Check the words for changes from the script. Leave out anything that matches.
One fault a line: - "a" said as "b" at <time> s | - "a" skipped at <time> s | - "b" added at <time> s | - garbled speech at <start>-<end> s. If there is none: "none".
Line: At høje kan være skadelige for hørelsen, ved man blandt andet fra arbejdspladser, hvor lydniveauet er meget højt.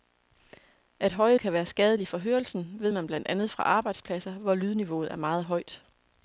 none